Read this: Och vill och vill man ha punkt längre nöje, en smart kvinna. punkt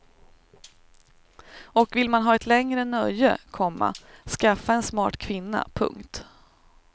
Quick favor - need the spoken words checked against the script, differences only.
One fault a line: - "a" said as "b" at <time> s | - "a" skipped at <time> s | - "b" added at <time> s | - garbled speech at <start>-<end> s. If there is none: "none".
- "och vill" skipped at 2.1 s
- "punkt" said as "ett" at 2.3 s
- "komma skaffa" added at 3.5 s